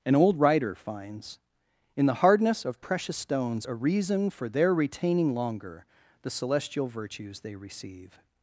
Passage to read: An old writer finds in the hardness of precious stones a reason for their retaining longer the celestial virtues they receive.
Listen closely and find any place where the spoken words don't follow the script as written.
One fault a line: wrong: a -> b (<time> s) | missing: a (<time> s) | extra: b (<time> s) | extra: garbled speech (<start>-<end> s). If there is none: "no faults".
no faults